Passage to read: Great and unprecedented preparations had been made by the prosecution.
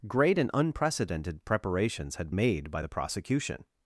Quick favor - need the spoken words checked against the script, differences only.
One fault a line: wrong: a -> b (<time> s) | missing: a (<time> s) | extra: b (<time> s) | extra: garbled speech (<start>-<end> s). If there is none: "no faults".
missing: been (2.3 s)